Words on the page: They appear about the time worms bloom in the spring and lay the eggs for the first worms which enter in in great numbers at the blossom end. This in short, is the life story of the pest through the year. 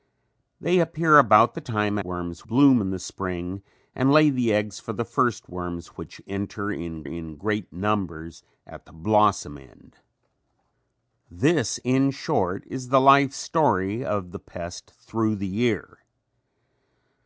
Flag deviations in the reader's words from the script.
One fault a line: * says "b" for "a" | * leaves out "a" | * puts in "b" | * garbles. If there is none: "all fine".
all fine